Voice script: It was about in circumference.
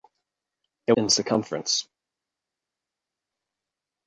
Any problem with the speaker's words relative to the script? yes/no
yes